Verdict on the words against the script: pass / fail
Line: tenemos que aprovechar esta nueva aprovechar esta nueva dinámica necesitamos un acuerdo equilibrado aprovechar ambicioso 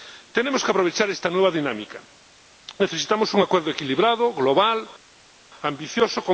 fail